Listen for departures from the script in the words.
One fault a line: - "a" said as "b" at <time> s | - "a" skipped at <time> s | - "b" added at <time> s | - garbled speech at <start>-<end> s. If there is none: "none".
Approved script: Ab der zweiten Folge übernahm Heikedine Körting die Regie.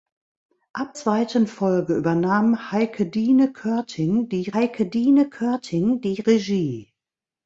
- "der" skipped at 1.0 s
- "Heikedine Körting die" added at 4.5 s